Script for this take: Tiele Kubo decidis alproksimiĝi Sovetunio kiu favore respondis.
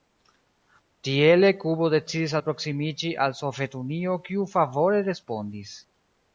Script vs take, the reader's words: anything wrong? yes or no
yes